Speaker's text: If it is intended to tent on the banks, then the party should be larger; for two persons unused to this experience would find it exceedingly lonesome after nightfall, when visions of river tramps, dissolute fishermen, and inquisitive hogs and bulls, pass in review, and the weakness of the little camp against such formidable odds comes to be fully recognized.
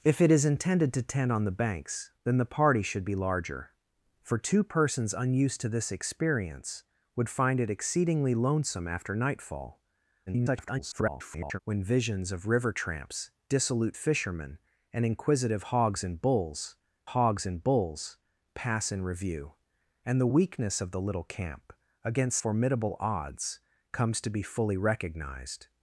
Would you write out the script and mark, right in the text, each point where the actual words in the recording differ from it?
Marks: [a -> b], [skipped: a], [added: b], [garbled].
If it is intended to tent on the banks, then the party should be larger; for two persons unused to this experience would find it exceedingly lonesome after nightfall, [garbled] when visions of river tramps, dissolute fishermen, and inquisitive hogs and bulls, [added: hogs and bulls] pass in review, and the weakness of the little camp against [skipped: such] formidable odds comes to be fully recognized.